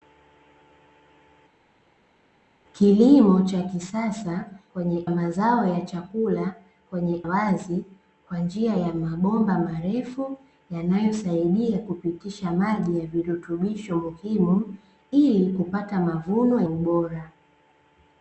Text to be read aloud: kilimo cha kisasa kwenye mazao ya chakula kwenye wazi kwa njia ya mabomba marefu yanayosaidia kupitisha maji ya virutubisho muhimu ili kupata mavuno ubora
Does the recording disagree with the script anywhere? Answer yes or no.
no